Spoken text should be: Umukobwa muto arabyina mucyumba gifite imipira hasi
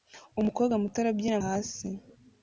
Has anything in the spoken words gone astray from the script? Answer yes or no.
yes